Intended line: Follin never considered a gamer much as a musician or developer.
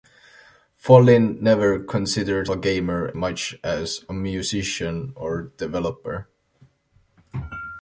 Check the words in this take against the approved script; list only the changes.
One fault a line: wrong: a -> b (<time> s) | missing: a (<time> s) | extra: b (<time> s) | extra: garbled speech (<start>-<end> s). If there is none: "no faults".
no faults